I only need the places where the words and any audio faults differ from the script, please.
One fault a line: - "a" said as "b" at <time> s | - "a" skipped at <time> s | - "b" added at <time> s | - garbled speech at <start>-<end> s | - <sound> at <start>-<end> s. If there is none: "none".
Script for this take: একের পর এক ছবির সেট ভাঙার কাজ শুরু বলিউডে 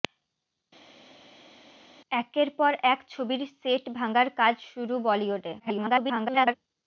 - garbled speech at 5.6-6.5 s